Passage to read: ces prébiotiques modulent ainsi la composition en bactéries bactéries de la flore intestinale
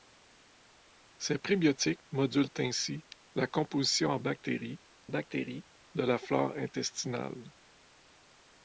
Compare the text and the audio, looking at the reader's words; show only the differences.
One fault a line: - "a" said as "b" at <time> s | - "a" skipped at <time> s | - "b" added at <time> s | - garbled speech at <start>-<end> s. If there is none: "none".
none